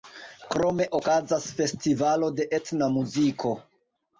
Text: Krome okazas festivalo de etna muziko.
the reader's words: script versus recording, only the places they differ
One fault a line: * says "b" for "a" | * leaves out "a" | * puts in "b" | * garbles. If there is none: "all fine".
all fine